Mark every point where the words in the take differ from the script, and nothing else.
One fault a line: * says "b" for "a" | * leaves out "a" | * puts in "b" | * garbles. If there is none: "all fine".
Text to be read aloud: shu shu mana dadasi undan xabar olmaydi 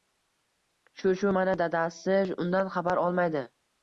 all fine